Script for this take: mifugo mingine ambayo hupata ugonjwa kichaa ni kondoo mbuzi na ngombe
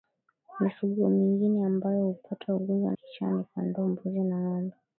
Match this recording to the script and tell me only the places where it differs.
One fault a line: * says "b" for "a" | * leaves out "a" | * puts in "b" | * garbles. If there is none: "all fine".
all fine